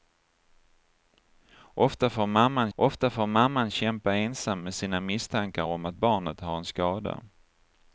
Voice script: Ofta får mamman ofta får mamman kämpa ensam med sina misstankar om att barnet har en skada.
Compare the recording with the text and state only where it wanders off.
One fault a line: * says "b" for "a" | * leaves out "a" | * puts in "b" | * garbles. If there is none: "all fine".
all fine